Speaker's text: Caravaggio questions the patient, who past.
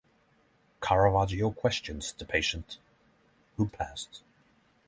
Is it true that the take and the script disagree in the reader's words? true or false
false